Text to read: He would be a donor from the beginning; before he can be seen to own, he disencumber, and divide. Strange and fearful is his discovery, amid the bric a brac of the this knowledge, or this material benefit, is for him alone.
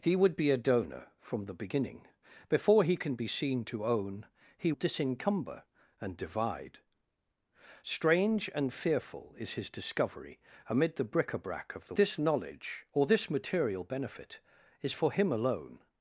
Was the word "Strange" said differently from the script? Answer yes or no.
no